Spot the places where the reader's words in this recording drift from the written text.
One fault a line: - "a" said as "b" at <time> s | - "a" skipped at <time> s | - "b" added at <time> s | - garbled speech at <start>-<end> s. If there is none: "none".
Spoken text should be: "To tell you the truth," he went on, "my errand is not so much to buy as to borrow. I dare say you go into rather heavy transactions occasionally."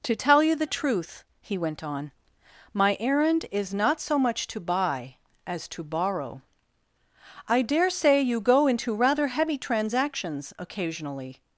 none